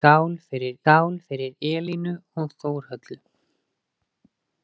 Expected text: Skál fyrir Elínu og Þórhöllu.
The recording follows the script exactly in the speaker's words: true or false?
false